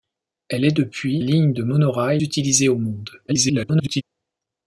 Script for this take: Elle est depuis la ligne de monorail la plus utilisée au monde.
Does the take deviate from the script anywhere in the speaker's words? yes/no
yes